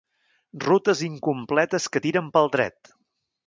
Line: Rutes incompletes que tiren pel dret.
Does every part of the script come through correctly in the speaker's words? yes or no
yes